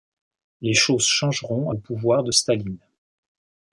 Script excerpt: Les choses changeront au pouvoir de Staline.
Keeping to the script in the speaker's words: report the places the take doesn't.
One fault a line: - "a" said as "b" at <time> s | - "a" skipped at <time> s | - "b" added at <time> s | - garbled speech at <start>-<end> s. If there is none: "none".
none